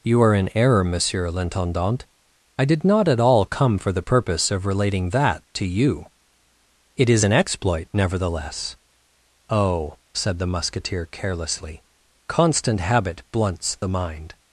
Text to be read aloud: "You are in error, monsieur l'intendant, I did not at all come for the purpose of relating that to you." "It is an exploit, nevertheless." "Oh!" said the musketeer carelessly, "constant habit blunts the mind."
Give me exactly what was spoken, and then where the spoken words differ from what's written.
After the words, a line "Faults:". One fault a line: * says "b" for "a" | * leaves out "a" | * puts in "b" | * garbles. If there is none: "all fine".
"You are in error, monsieur l'intendant, I did not at all come for the purpose of relating that to you." "It is an exploit, nevertheless." "Oh!" said the musketeer carelessly, "constant habit blunts the mind."
Faults:
all fine